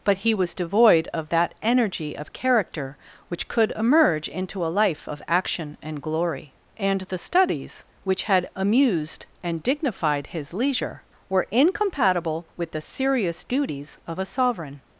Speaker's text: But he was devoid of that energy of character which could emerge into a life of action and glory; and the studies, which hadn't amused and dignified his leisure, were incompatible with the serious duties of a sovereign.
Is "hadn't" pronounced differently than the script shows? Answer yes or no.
yes